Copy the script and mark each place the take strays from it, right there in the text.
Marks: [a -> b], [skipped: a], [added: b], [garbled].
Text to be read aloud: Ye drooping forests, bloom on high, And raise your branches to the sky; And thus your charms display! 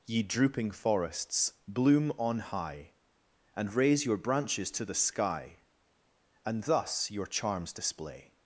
Ye drooping forests, bloom on high, And raise your branches to the sky; And thus your charms display!